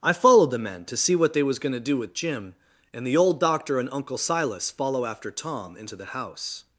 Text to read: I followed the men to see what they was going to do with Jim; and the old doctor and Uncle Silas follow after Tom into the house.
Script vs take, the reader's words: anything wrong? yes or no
no